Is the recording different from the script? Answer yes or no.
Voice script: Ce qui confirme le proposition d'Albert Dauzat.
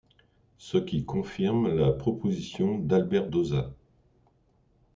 yes